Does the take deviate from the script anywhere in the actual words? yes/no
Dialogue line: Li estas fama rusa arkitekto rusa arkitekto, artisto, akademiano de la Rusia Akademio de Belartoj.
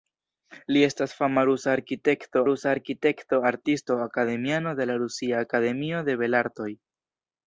no